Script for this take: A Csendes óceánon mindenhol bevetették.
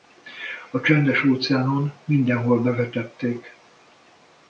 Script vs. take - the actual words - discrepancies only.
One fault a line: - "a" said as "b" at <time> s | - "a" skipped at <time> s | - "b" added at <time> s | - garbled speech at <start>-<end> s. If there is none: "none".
none